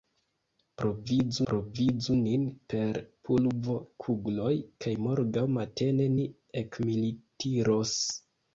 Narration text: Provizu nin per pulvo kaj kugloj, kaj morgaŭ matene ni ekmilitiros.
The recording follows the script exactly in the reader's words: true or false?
false